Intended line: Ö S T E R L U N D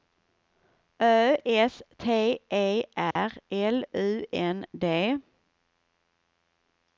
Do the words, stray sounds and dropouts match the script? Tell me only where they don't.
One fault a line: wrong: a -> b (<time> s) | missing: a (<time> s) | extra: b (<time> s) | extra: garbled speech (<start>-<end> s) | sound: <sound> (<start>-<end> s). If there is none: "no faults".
sound: dropout (3.1-3.2 s)